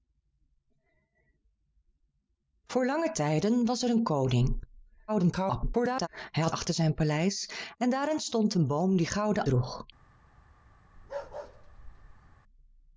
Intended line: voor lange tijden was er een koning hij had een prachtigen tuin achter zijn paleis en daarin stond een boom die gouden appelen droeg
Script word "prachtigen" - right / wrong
wrong